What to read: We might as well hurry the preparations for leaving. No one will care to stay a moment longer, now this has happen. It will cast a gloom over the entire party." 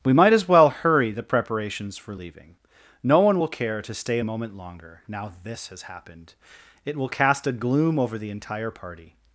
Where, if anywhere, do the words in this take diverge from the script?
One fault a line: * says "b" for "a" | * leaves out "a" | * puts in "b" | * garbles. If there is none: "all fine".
* says "happened" for "happen"